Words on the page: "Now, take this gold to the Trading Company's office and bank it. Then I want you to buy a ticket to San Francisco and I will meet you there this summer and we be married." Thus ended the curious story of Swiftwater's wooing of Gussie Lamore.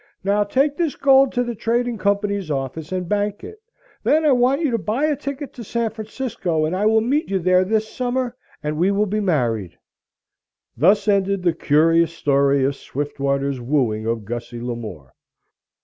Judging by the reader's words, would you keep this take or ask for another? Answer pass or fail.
fail